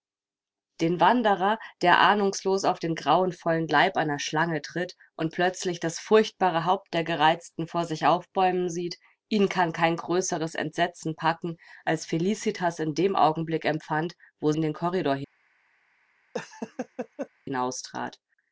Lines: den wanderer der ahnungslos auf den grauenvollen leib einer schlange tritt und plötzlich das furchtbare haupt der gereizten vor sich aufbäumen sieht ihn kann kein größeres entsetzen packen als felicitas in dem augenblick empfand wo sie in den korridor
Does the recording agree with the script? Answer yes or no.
no